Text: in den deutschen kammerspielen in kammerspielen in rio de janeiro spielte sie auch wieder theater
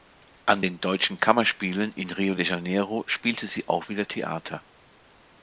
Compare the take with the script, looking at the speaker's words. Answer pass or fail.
fail